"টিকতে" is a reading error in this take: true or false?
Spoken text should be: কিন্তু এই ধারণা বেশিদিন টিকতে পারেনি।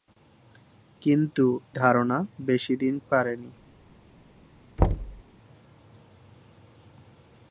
true